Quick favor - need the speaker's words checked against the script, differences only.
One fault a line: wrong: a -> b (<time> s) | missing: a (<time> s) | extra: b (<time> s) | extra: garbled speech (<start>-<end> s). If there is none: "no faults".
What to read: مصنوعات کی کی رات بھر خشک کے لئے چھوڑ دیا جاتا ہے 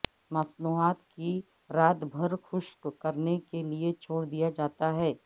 missing: کی (1.3 s)
extra: کرنے (3.0 s)